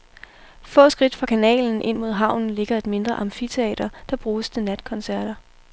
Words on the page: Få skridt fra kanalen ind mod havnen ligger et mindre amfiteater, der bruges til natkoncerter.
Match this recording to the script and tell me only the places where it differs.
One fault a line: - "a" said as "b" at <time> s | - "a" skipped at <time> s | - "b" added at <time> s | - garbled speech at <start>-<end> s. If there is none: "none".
none